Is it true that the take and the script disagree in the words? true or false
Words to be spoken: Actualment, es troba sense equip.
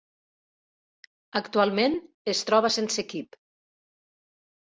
false